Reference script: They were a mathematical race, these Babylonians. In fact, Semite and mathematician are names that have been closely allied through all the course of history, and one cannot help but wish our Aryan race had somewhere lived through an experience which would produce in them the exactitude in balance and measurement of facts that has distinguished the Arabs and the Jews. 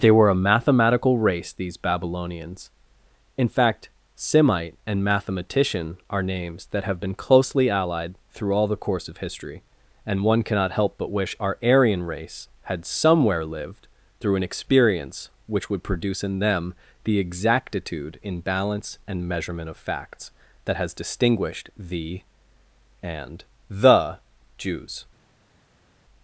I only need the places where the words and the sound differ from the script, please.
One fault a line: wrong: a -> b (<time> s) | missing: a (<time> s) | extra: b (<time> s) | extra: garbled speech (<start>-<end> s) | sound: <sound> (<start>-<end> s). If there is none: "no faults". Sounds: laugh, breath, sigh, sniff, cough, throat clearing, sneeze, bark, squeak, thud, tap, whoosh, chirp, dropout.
missing: Arabs (22.2 s)